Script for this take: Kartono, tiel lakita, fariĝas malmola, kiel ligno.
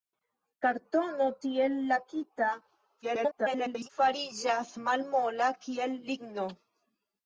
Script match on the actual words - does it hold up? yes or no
no